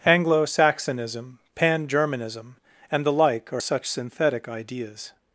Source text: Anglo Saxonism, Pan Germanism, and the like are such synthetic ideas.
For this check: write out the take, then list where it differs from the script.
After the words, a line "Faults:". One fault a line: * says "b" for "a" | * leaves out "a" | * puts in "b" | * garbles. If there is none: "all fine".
Anglo Saxonism, Pan Germanism, and the like are such synthetic ideas.
Faults:
all fine